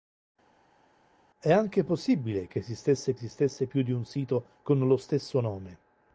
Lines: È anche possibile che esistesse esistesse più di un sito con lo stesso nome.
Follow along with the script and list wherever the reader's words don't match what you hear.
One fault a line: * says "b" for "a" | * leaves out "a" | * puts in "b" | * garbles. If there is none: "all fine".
all fine